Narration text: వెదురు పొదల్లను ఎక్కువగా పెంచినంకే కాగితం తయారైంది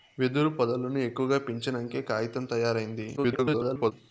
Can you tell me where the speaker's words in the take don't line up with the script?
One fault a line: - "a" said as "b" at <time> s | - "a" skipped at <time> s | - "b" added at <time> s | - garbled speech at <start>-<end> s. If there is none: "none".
- garbled speech at 3.2-3.9 s